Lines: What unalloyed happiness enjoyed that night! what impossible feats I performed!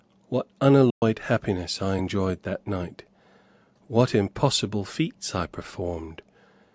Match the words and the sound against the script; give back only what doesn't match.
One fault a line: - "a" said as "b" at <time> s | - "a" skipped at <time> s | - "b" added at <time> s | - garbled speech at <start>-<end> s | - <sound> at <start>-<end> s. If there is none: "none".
- dropout at 0.9-1.0 s
- "I" added at 1.8 s